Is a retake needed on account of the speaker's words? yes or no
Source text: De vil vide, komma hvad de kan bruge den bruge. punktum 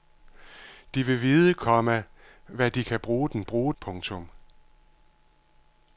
no